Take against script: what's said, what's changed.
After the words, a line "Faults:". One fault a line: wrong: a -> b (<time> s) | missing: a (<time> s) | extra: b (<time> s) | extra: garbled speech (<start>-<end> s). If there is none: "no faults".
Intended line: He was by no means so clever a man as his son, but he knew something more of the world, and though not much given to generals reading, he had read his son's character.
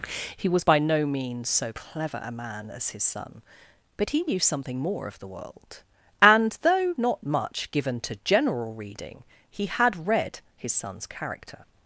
He was by no means so clever a man as his son, but he knew something more of the world, and though not much given to general reading, he had read his son's character.
Faults:
wrong: generals -> general (8.2 s)